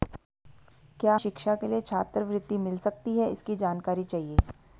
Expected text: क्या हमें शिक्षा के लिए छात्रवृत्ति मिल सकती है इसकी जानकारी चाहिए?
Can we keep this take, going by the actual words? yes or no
no